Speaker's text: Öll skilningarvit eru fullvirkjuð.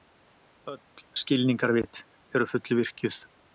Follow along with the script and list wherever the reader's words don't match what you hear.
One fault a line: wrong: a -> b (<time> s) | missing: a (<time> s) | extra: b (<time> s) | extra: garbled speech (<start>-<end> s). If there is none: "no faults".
no faults